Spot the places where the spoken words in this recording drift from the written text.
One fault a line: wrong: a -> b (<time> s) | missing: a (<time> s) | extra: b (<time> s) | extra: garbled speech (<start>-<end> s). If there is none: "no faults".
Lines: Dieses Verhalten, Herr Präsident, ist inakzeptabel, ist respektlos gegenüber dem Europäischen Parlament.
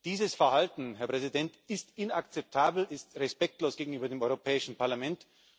no faults